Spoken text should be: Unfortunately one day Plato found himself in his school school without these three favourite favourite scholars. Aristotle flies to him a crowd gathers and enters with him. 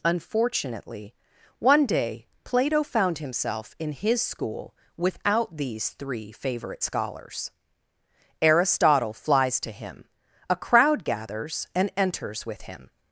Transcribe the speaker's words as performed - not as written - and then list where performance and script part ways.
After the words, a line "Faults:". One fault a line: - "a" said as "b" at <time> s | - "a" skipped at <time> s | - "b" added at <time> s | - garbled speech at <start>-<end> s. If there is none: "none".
Unfortunately one day Plato found himself in his school without these three favourite scholars. Aristotle flies to him a crowd gathers and enters with him.
Faults:
- "school" skipped at 4.8 s
- "favourite" skipped at 6.8 s